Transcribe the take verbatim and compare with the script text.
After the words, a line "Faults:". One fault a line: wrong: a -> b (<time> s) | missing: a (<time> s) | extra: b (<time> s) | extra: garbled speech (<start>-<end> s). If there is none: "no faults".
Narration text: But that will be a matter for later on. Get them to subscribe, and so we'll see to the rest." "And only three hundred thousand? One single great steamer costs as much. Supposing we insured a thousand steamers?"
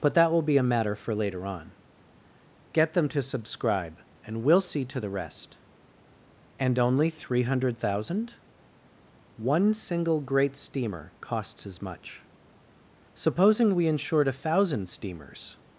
But that will be a matter for later on. Get them to subscribe, and we'll see to the rest." "And only three hundred thousand? One single great steamer costs as much. Supposing we insured a thousand steamers?"
Faults:
missing: so (4.4 s)